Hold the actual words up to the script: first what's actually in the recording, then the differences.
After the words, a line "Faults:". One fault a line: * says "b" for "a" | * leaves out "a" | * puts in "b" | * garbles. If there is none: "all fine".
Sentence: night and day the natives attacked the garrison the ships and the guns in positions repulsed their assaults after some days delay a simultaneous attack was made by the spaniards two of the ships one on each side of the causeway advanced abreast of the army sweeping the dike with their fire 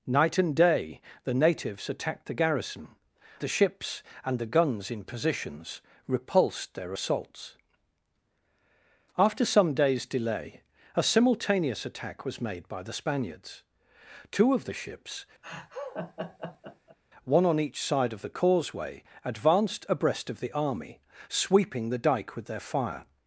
night and day the natives attacked the garrison the ships and the guns in positions repulsed their assaults after some days delay a simultaneous attack was made by the spaniards two of the ships one on each side of the causeway advanced abreast of the army sweeping the dike with their fire
Faults:
all fine